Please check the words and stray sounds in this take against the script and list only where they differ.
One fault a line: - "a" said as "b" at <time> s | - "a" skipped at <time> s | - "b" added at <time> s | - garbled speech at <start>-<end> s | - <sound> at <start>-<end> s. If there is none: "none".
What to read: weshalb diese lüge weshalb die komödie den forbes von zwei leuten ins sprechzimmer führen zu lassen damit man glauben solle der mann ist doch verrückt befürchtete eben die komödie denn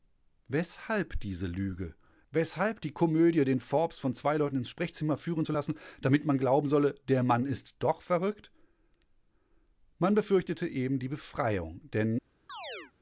- "man" added at 10.0 s
- "komödie" said as "befreiung" at 11.1 s
- chirp at 12.5-12.9 s